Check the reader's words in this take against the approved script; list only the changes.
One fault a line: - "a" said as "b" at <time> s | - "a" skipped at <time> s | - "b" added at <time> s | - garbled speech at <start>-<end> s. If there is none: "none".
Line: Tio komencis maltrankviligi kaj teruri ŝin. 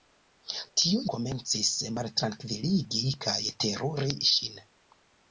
none